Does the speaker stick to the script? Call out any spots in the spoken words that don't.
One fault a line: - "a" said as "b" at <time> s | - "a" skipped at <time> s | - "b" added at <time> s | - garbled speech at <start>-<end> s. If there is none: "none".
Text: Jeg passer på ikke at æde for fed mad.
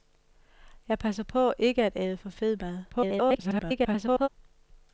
- garbled speech at 2.9-4.3 s